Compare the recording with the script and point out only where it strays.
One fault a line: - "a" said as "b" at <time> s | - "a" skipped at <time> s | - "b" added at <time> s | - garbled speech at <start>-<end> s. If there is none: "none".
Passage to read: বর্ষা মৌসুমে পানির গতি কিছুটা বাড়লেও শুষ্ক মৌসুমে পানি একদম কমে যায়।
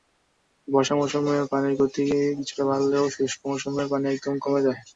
none